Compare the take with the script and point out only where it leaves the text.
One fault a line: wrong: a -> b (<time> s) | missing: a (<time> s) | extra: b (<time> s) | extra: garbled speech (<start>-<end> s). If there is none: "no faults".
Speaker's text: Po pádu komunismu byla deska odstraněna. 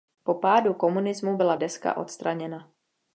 no faults